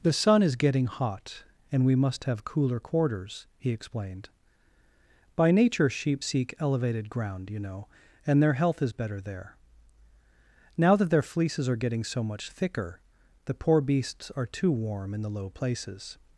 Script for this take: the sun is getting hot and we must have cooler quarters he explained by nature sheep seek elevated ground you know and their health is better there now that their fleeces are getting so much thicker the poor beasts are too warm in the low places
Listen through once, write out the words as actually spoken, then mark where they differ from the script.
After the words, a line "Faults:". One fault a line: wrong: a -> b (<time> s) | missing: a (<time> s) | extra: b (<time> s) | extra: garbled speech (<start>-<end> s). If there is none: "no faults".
the sun is getting hot and we must have cooler quarters he explained by nature sheep seek elevated ground you know and their health is better there now that their fleeces are getting so much thicker the poor beasts are too warm in the low places
Faults:
no faults